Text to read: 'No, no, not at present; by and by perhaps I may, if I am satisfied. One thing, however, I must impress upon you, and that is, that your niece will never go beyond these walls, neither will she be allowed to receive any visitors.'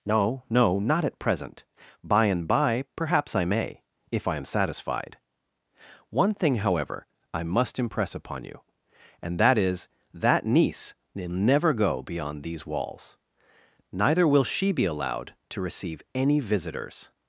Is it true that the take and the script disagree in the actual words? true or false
true